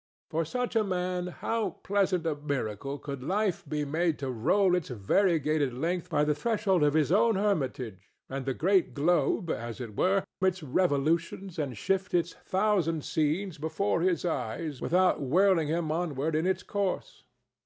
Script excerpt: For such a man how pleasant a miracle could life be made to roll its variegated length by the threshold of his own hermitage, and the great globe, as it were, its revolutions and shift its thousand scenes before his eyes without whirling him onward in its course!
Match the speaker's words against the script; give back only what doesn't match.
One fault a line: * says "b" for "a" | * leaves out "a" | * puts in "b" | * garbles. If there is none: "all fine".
all fine